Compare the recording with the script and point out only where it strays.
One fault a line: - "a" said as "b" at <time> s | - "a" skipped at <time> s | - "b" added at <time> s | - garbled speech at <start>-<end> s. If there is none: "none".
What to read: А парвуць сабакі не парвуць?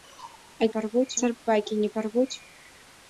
none